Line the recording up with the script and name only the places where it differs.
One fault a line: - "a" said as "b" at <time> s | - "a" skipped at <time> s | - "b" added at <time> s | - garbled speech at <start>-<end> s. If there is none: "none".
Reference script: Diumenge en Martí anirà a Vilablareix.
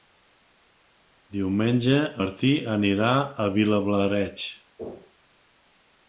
- "en" skipped at 2.0 s